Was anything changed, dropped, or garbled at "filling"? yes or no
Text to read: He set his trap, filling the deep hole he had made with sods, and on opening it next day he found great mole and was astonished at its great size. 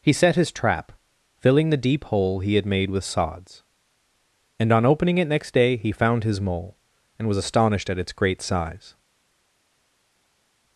no